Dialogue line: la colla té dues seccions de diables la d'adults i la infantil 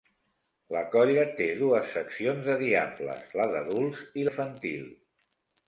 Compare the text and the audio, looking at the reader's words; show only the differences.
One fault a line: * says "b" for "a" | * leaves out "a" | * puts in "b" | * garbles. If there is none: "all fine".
* leaves out "la"